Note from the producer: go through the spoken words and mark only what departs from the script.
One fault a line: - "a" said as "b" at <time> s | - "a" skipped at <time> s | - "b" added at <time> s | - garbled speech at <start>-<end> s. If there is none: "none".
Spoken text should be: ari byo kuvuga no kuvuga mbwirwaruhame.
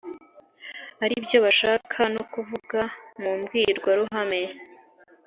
- "kuvuga" said as "bashaka" at 1.4 s
- "mu" added at 3.2 s